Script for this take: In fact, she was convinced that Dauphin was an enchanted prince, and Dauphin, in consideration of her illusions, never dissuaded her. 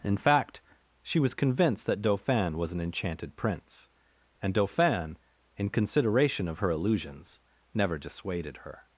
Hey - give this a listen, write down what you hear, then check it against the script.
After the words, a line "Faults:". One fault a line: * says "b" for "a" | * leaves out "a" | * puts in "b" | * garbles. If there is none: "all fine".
In fact, she was convinced that Dauphin was an enchanted prince, and Dauphin, in consideration of her illusions, never dissuaded her.
Faults:
all fine